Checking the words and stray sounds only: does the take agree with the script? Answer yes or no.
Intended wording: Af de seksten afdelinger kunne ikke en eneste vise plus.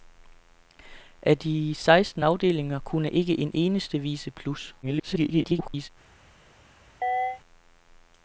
no